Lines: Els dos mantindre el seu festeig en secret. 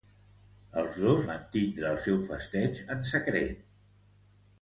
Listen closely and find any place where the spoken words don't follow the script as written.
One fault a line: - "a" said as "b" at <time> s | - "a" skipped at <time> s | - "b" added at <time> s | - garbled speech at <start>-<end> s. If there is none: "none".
none